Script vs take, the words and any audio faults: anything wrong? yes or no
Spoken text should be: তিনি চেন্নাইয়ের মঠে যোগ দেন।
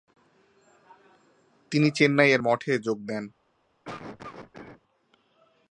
yes